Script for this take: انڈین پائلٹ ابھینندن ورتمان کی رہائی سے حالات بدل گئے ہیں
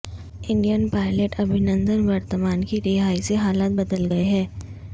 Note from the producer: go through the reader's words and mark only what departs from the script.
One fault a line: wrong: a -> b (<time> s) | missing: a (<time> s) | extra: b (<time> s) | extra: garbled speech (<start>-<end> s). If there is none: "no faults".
no faults